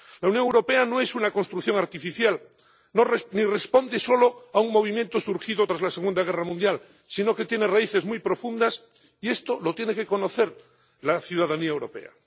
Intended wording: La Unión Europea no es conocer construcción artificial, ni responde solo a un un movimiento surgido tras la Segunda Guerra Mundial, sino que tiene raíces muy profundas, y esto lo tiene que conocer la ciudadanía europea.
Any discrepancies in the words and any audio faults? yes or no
yes